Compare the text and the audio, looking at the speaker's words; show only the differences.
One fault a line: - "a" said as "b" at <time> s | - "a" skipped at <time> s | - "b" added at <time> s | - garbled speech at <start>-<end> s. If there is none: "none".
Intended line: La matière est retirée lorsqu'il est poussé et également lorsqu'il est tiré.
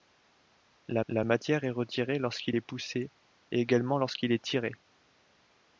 - "la" added at 1.1 s